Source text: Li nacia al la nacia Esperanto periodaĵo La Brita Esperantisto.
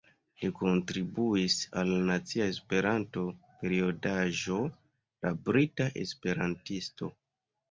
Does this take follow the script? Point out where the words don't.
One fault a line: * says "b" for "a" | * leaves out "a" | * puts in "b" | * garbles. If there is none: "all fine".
* says "kontribuis" for "nacia"